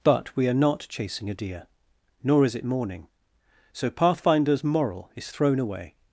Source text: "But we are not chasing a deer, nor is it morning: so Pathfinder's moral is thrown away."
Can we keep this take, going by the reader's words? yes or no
yes